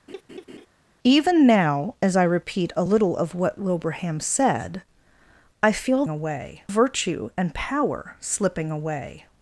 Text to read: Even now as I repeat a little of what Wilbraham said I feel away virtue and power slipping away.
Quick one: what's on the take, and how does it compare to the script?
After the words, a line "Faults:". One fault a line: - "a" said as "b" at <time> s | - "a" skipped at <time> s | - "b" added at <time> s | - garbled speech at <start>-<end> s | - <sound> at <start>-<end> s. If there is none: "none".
Even now as I repeat a little of what Wilbraham said I feel away virtue and power slipping away.
Faults:
- laugh at 0.1-0.7 s